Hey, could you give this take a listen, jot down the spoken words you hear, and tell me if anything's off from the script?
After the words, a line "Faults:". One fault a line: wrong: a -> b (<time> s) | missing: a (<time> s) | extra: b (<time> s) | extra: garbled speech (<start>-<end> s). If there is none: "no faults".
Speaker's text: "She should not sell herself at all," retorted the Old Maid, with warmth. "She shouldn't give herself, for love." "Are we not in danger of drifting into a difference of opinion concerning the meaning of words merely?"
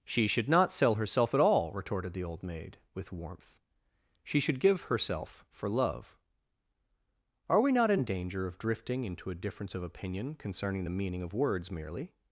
"She should not sell herself at all," retorted the Old Maid, with warmth. "She should give herself, for love." "Are we not in danger of drifting into a difference of opinion concerning the meaning of words merely?"
Faults:
wrong: shouldn't -> should (4.4 s)